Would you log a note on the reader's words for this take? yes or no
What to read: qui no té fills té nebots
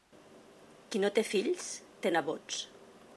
no